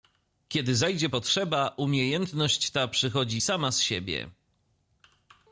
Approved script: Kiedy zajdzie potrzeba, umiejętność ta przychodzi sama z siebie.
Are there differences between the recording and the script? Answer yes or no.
no